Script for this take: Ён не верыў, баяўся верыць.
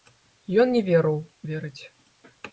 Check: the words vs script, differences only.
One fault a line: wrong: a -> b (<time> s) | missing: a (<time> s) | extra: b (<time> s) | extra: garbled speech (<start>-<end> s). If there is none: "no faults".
missing: баяўся (1.2 s)